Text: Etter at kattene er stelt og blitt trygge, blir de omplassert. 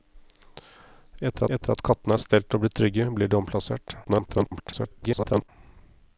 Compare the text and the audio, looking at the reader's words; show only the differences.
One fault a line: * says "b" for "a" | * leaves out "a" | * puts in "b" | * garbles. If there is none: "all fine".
* puts in "etter"
* garbles